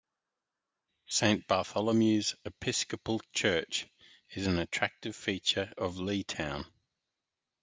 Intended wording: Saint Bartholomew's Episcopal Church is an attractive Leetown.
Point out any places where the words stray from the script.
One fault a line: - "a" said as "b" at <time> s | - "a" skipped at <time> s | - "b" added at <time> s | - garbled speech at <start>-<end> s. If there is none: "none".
- "feature of" added at 5.1 s